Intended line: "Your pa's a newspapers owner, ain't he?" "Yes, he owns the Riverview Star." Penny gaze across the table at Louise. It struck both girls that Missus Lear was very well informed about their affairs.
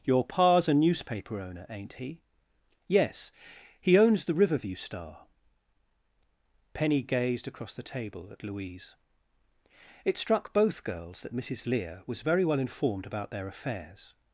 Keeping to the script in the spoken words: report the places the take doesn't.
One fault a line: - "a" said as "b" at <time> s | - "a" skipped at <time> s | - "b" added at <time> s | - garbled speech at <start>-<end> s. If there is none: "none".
- "newspapers" said as "newspaper" at 0.7 s
- "gaze" said as "gazed" at 7.0 s